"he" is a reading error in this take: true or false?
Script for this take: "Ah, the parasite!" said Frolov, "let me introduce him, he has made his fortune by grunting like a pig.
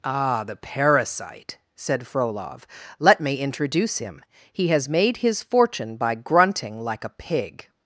false